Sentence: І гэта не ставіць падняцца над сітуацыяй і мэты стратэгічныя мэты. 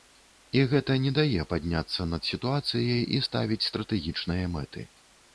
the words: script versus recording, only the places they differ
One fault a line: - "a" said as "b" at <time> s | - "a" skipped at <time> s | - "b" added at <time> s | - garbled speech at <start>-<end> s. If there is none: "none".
- "ставіць" said as "дае" at 1.2 s
- "мэты" said as "ставіць" at 3.2 s